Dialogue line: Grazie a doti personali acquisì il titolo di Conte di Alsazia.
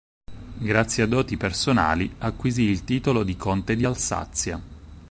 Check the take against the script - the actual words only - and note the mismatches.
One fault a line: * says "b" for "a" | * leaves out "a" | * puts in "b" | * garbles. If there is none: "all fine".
all fine